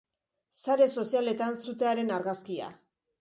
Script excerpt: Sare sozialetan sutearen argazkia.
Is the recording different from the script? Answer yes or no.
no